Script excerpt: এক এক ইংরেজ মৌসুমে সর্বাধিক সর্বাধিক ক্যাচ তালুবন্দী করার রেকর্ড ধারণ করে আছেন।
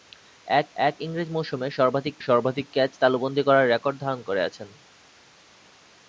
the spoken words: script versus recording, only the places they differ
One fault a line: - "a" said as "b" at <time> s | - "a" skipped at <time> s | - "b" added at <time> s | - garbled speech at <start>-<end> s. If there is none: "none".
none